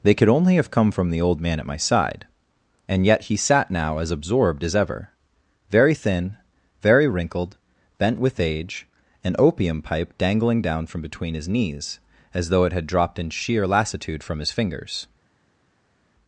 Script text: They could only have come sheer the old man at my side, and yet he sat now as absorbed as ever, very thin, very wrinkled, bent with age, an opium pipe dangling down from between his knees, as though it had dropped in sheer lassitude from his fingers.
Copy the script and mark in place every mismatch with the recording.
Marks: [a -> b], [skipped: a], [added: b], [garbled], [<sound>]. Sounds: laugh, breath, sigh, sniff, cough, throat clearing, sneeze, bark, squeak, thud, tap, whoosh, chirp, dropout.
They could only have come [sheer -> from] the old man at my side, and yet he sat now as absorbed as ever, very thin, very wrinkled, bent with age, an opium pipe dangling down from between his knees, as though it had dropped in sheer lassitude from his fingers.